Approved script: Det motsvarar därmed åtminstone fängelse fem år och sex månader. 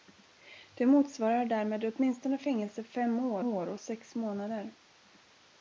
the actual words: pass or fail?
fail